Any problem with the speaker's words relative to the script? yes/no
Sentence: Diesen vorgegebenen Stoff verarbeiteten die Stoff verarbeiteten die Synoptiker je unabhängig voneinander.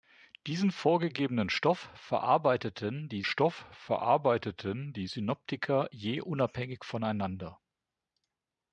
no